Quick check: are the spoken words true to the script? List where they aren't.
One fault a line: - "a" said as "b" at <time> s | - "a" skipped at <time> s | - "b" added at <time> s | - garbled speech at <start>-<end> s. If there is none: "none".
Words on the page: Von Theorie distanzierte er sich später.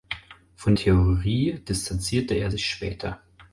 none